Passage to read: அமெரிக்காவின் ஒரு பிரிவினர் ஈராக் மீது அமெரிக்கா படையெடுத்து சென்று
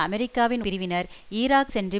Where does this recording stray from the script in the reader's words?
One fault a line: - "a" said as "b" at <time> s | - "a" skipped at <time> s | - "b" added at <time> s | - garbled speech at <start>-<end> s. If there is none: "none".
- "ஒரு" skipped at 0.6 s
- "மீது அமெரிக்கா படையெடுத்து" skipped at 1.7 s